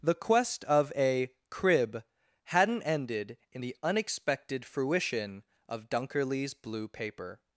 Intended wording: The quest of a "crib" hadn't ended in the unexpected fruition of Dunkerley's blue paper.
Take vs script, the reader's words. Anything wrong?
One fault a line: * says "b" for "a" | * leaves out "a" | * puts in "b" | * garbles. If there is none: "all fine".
all fine